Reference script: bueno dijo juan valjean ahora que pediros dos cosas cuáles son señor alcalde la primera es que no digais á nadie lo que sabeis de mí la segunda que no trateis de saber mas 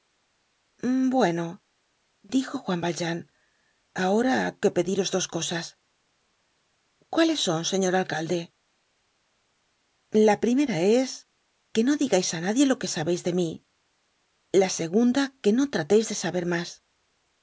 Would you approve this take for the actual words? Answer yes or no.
yes